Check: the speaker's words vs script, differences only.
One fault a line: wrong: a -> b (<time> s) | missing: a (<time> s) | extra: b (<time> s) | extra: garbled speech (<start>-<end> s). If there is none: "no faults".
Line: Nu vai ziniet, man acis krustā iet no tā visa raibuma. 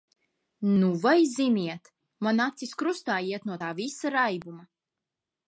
no faults